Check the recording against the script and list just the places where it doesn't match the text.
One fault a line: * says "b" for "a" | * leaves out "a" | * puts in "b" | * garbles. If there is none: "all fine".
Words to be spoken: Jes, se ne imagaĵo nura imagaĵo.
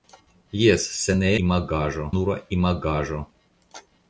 all fine